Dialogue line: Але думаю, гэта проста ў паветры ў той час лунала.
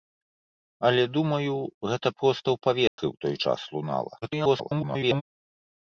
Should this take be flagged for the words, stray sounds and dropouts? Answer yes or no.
yes